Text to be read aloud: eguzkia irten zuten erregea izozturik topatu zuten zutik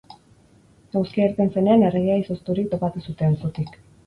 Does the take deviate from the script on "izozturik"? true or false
false